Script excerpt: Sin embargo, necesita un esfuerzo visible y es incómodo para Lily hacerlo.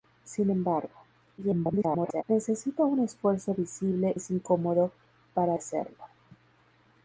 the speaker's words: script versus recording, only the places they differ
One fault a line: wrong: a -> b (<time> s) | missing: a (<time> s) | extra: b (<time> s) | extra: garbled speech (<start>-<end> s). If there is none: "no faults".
extra: garbled speech (1.4-2.2 s)
missing: y (4.1 s)
missing: Lily (5.6 s)